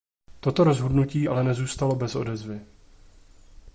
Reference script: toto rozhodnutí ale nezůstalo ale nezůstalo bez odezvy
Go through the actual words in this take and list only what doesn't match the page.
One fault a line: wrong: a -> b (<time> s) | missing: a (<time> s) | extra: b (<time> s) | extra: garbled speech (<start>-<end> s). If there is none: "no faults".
missing: ale nezůstalo (2.0 s)